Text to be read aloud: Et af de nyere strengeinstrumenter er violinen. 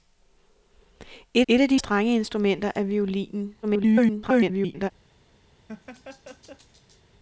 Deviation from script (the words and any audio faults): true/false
true